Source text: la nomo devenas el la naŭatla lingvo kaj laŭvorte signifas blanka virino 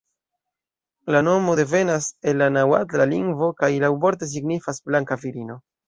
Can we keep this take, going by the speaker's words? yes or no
yes